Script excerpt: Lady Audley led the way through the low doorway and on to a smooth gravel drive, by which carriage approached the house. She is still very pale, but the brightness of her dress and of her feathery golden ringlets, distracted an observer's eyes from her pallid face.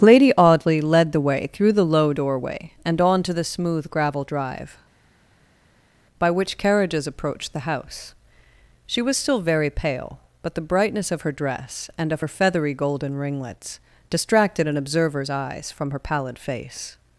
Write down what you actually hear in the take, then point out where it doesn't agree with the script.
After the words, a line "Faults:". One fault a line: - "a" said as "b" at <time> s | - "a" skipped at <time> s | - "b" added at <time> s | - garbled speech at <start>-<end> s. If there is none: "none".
Lady Audley led the way through the low doorway and on to the smooth gravel drive, by which carriages approached the house. She was still very pale, but the brightness of her dress and of her feathery golden ringlets, distracted an observer's eyes from her pallid face.
Faults:
- "a" said as "the" at 3.3 s
- "carriage" said as "carriages" at 6.6 s
- "is" said as "was" at 9.0 s